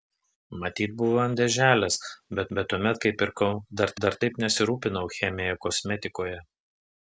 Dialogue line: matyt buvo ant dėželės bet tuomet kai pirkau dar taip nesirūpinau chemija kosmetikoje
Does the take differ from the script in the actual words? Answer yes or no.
yes